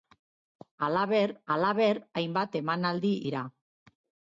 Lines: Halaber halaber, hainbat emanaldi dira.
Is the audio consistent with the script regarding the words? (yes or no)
yes